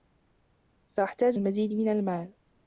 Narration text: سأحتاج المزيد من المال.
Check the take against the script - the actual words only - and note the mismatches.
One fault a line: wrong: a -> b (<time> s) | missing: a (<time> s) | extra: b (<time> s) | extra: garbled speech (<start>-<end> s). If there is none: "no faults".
no faults